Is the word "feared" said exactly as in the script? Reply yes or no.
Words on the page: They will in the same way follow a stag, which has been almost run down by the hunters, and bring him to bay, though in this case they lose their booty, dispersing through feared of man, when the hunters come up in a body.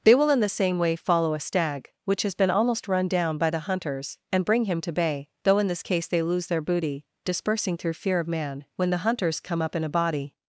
no